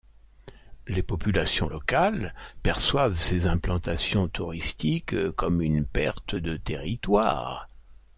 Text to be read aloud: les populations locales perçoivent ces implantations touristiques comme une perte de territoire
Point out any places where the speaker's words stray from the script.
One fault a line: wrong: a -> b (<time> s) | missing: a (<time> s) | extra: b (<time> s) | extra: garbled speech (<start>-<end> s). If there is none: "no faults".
no faults